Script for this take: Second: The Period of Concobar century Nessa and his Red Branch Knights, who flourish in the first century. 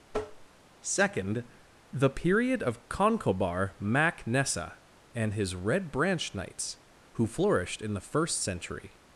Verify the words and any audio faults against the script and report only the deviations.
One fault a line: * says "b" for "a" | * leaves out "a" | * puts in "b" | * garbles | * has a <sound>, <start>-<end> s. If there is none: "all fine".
* has a tap, 0.1-0.5 s
* says "mac" for "century"
* says "flourished" for "flourish"